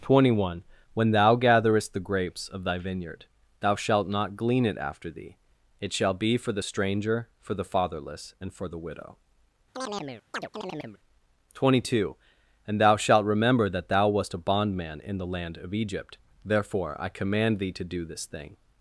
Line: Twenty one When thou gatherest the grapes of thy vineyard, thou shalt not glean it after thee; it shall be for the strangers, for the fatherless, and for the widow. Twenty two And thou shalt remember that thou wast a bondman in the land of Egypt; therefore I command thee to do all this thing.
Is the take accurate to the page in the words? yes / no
no